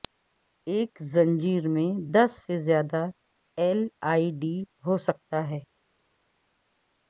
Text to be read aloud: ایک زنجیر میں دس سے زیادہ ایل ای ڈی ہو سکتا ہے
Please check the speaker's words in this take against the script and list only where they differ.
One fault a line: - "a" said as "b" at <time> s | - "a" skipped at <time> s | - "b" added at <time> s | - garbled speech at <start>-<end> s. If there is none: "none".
none